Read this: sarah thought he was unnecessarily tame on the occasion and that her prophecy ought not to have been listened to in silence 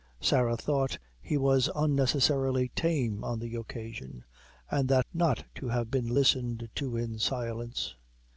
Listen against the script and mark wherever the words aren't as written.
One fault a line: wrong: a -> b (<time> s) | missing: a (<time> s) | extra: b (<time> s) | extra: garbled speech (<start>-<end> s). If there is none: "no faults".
missing: her prophecy ought (5.0 s)